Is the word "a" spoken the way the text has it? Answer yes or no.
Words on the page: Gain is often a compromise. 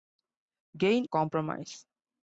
no